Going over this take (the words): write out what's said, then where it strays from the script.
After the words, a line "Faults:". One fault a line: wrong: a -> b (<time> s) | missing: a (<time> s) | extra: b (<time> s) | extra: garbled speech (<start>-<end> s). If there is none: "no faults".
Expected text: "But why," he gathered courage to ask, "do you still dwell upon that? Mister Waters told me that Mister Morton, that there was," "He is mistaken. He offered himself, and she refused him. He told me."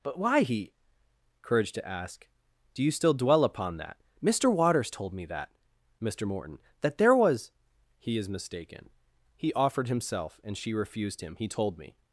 "But why," he courage to ask, "do you still dwell upon that? Mister Waters told me that Mister Morton, that there was," "He is mistaken. He offered himself, and she refused him. He told me."
Faults:
missing: gathered (0.7 s)